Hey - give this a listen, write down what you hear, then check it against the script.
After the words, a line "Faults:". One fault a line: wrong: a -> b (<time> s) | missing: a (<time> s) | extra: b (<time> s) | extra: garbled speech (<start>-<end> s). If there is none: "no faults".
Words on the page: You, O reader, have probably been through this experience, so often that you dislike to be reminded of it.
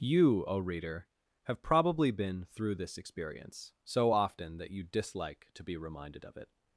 You, O reader, have probably been through this experience, so often that you dislike to be reminded of it.
Faults:
no faults